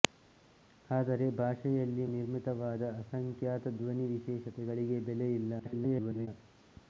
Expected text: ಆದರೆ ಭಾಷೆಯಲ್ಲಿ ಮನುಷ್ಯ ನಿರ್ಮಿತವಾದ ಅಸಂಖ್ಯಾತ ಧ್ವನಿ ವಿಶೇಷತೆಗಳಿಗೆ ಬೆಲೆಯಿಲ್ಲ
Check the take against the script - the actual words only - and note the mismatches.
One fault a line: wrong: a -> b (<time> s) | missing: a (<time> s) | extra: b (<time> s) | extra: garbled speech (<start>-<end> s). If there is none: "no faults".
missing: ಮನುಷ್ಯ (2.0 s)
extra: garbled speech (5.6-6.3 s)